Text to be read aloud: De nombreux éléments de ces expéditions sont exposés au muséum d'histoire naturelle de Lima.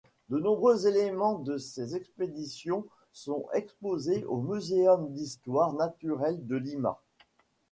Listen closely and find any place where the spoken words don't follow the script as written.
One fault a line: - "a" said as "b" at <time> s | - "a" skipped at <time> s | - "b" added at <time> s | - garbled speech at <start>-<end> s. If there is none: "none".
none